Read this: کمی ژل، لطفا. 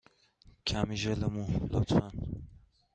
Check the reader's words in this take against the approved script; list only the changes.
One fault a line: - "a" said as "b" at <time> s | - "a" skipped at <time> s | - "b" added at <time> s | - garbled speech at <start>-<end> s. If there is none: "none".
- "مو" added at 1.3 s